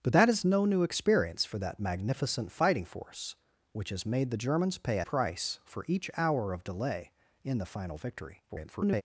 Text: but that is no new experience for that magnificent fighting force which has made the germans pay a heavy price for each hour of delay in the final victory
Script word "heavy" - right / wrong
wrong